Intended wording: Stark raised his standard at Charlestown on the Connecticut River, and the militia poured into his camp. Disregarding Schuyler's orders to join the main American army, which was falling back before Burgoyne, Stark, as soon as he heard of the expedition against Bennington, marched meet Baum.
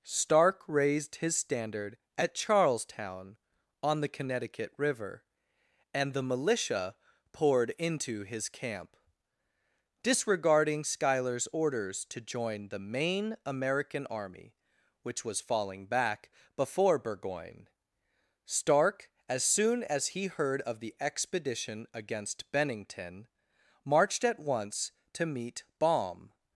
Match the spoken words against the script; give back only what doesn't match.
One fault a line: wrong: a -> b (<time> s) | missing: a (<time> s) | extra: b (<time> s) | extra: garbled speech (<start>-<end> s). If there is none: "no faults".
extra: at once to (24.2 s)